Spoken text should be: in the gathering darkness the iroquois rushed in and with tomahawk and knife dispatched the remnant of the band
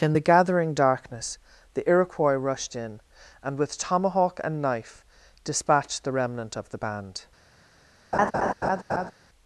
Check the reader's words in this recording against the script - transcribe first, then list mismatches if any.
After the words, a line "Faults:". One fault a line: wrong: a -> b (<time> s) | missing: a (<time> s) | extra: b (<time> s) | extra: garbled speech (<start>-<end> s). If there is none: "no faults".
in the gathering darkness the iroquois rushed in and with tomahawk and knife dispatched the remnant of the band
Faults:
no faults